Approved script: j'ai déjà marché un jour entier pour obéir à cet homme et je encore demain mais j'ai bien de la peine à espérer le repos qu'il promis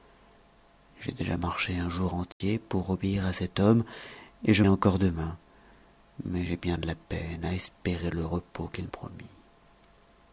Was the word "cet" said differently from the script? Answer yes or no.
no